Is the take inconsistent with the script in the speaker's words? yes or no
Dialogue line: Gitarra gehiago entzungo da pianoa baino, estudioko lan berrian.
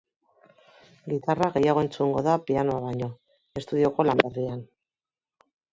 no